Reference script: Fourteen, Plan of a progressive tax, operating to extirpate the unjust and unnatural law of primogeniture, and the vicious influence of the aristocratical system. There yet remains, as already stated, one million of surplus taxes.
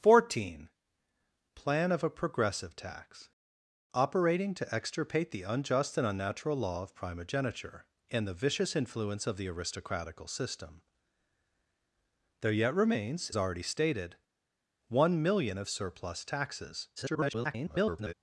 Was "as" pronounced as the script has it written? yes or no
no